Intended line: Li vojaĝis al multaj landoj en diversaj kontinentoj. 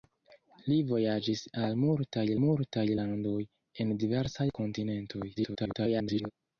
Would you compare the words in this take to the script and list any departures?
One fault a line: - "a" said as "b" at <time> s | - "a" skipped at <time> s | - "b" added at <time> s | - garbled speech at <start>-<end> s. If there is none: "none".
- "multaj" added at 2.4 s
- garbled speech at 5.4-6.3 s